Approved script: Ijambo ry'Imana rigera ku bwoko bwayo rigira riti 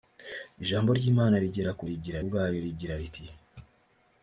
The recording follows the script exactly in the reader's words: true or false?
false